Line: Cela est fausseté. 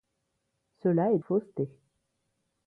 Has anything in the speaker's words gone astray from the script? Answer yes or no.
no